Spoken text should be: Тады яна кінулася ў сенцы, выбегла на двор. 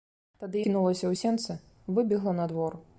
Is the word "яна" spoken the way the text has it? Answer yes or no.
no